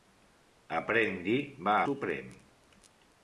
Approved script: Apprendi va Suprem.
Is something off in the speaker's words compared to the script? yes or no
no